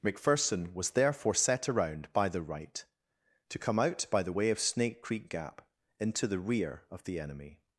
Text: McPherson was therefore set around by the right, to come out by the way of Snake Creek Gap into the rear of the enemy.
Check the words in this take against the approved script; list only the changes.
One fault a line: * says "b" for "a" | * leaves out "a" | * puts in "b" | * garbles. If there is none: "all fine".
all fine